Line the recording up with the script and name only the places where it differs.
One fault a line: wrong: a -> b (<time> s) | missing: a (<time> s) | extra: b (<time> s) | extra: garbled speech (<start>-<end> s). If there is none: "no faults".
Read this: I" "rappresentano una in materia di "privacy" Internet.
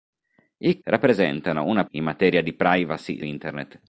no faults